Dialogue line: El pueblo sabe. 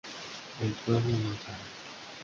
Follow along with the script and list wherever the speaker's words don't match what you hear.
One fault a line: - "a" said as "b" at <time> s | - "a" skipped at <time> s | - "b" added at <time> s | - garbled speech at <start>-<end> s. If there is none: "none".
- "no" added at 1.1 s